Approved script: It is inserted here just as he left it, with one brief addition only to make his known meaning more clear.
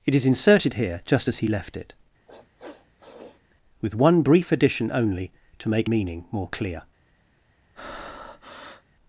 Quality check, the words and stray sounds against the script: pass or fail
fail